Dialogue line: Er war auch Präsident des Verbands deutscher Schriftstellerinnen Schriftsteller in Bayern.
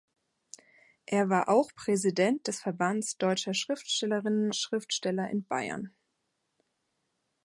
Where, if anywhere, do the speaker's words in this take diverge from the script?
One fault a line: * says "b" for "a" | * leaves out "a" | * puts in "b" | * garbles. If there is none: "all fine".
all fine